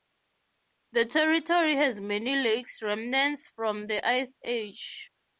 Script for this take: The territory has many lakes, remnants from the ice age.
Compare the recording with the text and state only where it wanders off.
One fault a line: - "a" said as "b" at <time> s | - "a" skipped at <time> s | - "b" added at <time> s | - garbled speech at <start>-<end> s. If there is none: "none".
none